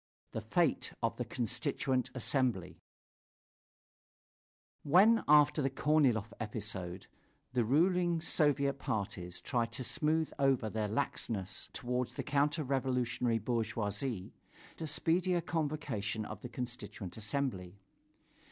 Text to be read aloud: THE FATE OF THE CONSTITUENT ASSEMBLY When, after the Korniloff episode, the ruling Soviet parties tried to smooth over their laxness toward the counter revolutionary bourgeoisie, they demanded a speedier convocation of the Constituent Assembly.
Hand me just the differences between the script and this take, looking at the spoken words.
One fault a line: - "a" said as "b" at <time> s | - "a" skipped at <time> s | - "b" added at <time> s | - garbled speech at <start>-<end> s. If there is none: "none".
- "they demanded" skipped at 14.3 s